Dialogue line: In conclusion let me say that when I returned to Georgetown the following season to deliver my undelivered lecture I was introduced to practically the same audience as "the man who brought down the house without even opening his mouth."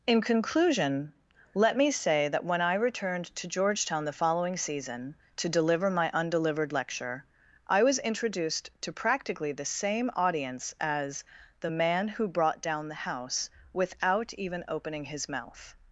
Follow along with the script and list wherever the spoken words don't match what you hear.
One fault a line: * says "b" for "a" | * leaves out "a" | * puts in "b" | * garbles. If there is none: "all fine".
all fine